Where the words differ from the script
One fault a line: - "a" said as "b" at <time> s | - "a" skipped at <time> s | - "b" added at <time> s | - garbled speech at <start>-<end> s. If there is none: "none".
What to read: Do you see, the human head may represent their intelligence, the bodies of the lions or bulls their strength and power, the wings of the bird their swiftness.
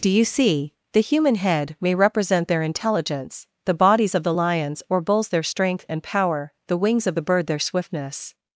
none